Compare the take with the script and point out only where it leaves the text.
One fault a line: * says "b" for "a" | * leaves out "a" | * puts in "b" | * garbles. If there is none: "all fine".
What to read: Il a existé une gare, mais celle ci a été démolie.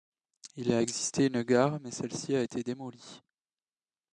all fine